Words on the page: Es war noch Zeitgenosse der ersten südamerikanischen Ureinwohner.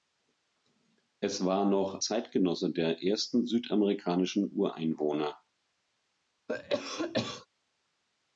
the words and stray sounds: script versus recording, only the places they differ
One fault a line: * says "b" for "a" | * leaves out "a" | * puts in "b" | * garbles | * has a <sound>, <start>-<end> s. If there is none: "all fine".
* has a cough, 6.5-7.5 s